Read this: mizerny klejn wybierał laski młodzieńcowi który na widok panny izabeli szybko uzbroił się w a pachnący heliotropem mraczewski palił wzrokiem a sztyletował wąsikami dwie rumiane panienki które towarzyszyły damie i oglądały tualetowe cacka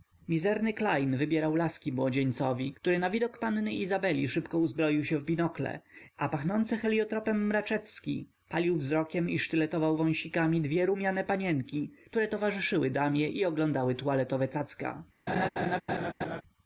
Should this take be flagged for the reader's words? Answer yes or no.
yes